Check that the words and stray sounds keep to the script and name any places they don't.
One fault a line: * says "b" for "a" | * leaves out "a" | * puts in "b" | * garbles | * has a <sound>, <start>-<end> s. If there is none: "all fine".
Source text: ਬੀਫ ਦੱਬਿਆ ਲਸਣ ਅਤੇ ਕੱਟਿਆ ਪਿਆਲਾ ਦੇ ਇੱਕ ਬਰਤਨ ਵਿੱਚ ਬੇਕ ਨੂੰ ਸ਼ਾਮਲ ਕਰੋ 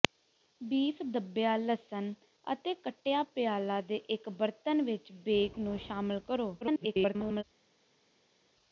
* garbles